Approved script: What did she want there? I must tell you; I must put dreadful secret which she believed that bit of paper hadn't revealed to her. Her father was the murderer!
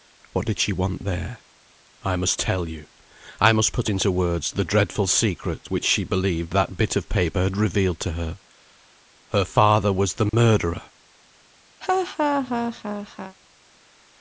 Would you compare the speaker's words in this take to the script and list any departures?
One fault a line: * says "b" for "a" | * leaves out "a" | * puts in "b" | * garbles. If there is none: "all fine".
* puts in "into words the"
* says "had" for "hadn't"